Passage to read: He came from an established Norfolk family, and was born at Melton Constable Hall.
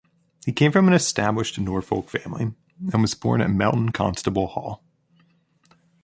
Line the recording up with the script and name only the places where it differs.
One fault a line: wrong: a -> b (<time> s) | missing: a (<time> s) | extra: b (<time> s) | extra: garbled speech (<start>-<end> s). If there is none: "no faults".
no faults